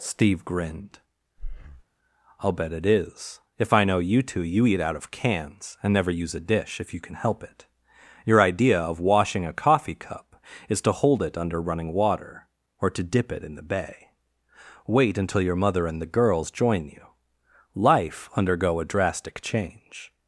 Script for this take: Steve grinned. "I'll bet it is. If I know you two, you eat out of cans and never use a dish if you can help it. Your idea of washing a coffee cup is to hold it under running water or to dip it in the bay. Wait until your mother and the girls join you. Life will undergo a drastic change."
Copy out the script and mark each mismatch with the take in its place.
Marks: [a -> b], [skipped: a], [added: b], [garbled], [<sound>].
Steve grinned. [breath] "I'll bet it is. If I know you two, you eat out of cans and never use a dish if you can help it. Your idea of washing a coffee cup is to hold it under running water or to dip it in the bay. Wait until your mother and the girls join you. Life [skipped: will] undergo a drastic change."